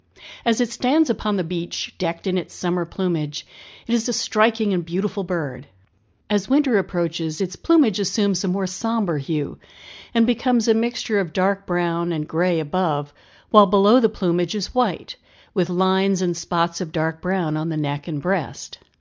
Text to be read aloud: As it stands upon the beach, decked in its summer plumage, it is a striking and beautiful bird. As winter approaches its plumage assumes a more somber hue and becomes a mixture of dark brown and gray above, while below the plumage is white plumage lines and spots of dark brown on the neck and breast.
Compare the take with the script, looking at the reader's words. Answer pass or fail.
fail